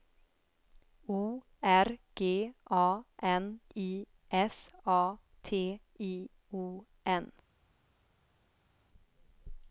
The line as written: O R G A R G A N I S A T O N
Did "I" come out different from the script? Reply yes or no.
no